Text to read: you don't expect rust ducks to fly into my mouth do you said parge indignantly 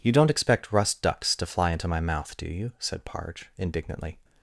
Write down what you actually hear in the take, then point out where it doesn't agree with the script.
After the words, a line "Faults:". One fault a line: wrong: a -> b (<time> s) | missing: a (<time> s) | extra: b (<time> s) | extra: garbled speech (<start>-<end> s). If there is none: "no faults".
you don't expect rust ducks to fly into my mouth do you said parge indignantly
Faults:
no faults